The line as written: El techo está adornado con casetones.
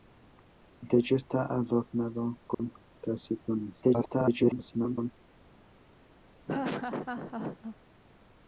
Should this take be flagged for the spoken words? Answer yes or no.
yes